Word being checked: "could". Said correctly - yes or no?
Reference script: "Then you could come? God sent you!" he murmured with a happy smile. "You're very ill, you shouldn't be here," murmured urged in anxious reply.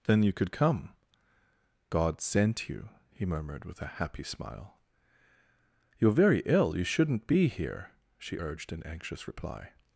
yes